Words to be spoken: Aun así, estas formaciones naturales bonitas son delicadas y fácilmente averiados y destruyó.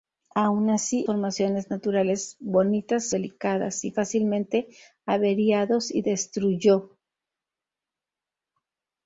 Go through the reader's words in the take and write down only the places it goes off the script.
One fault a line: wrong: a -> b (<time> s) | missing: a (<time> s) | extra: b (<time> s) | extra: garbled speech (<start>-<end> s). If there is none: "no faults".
missing: estas (1.1 s)
missing: son (3.1 s)